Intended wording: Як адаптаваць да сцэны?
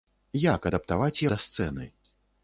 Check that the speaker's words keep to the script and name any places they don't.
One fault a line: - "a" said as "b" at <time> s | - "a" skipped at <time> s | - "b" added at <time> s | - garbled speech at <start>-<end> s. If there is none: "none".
none